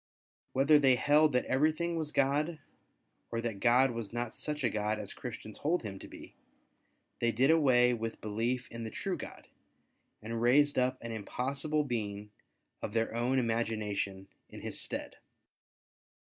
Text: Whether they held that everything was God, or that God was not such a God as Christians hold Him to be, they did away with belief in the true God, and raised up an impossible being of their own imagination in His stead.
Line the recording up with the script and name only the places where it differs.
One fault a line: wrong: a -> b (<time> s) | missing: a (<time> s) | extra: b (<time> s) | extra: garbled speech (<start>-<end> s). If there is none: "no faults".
no faults